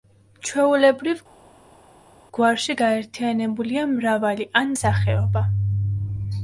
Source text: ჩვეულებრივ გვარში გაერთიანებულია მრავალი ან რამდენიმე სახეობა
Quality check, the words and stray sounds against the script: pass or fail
fail